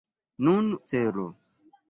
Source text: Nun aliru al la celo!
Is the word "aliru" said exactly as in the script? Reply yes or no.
no